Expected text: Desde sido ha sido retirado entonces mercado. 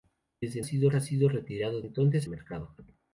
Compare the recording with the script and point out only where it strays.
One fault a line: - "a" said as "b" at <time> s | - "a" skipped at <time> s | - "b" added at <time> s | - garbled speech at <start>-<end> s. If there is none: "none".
none